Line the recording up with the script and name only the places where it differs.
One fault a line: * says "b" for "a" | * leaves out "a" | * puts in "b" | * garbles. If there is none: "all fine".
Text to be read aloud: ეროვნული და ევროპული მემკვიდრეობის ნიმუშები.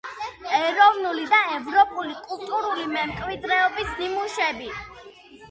* puts in "კულტურული"